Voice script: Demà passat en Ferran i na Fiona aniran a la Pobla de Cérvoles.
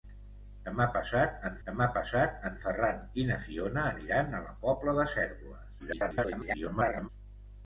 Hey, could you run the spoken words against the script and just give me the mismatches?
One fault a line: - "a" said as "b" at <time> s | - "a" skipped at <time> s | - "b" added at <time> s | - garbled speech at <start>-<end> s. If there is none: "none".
- "demà passat en" added at 1.7 s
- garbled speech at 5.8-7.1 s